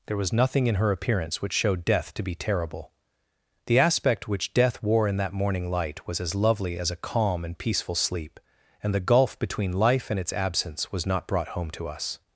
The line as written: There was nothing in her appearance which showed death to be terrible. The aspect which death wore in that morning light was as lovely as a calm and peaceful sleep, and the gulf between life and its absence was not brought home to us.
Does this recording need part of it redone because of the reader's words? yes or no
no